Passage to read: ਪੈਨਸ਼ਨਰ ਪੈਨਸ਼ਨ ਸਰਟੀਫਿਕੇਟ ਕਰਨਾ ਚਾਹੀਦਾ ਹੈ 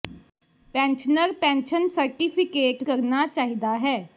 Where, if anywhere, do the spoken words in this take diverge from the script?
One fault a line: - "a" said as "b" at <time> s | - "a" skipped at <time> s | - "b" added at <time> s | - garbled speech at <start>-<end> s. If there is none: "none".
none